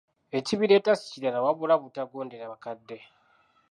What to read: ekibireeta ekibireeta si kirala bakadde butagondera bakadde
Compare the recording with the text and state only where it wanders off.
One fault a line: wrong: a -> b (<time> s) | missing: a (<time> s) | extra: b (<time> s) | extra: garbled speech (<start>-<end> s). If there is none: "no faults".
missing: ekibireeta (0.9 s)
wrong: bakadde -> wabula (1.4 s)